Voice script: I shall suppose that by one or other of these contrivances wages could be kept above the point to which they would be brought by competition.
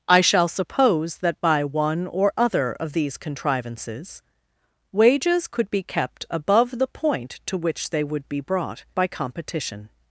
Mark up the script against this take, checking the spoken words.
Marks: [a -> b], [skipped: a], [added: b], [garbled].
I shall suppose that by one or other of these contrivances wages could be kept above the point to which they would be brought by competition.